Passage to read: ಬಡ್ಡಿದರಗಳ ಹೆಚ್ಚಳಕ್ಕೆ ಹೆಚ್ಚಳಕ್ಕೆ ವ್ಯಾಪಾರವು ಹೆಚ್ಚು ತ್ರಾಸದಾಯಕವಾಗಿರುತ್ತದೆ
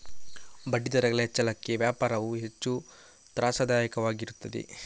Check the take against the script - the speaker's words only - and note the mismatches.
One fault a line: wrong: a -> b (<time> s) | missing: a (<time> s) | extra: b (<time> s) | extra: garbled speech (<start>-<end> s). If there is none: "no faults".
missing: ಹೆಚ್ಚಳಕ್ಕೆ (1.8 s)